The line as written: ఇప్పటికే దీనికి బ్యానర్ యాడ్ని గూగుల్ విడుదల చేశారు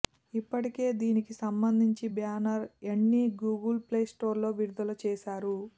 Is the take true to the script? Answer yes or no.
no